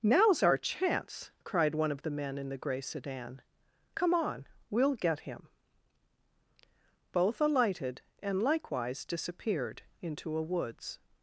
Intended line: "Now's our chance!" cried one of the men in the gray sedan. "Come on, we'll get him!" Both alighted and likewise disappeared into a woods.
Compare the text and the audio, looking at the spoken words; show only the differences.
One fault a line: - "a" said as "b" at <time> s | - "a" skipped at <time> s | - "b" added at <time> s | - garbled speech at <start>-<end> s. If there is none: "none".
none